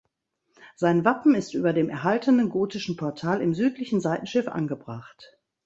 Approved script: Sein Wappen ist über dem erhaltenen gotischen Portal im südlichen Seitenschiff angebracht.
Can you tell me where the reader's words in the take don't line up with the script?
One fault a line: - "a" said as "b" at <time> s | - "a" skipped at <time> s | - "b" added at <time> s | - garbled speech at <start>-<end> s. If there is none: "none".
none